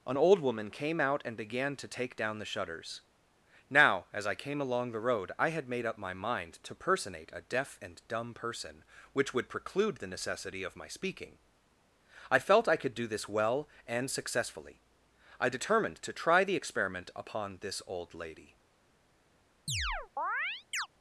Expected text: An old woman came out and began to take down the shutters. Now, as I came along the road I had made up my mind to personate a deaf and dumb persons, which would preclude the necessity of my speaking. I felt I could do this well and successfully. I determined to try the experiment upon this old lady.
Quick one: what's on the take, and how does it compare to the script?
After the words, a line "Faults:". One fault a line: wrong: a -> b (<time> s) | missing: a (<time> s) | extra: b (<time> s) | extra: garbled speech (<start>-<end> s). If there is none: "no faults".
An old woman came out and began to take down the shutters. Now, as I came along the road I had made up my mind to personate a deaf and dumb person, which would preclude the necessity of my speaking. I felt I could do this well and successfully. I determined to try the experiment upon this old lady.
Faults:
wrong: persons -> person (8.3 s)